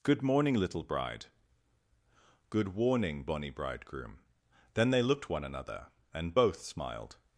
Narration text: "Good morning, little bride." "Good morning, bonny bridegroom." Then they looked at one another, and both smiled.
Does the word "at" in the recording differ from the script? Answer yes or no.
yes